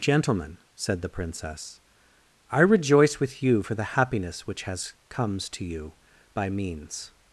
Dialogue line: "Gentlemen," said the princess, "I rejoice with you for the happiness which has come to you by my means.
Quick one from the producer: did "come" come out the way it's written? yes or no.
no